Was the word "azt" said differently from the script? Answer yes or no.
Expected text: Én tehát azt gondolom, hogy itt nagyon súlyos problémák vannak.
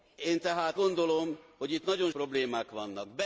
yes